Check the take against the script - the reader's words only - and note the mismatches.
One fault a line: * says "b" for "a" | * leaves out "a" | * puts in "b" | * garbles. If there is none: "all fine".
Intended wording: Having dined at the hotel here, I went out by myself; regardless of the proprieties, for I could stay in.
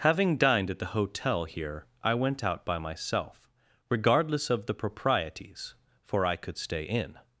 all fine